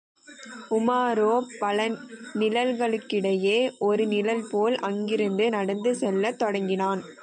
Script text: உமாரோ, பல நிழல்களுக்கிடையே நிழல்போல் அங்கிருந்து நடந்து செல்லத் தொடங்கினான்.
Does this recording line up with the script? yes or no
no